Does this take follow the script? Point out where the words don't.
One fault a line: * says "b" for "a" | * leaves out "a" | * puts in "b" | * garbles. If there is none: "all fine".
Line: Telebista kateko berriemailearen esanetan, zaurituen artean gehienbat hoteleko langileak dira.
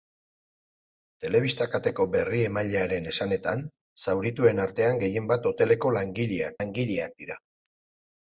* puts in "langileak"